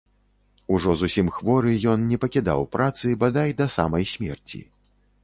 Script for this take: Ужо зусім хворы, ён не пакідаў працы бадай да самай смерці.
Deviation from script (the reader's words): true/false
false